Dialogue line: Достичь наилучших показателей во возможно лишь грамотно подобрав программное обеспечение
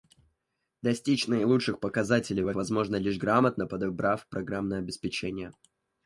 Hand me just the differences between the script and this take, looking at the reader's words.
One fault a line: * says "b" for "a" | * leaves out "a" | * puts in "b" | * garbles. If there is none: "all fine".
all fine